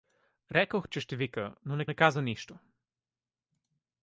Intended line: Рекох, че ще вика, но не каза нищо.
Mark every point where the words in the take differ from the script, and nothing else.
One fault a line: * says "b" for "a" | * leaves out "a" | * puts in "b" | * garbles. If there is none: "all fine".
* puts in "не"